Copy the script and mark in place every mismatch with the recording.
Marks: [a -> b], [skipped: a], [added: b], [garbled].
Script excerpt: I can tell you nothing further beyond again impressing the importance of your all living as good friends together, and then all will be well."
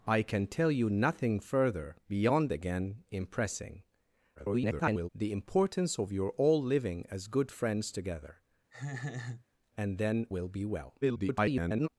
I can tell you nothing further beyond again impressing [garbled] the importance of your all living as good friends together, and then [skipped: all] will be well." [garbled]